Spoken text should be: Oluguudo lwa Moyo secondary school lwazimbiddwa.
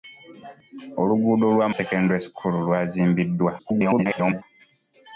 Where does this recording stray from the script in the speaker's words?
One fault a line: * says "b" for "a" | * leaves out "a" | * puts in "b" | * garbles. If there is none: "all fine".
* leaves out "Moyo"
* garbles